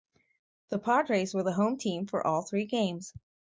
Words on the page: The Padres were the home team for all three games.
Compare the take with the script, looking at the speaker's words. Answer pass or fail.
pass